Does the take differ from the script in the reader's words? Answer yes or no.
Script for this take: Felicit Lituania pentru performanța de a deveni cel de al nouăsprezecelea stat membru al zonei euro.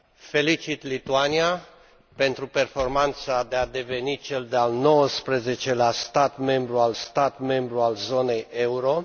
yes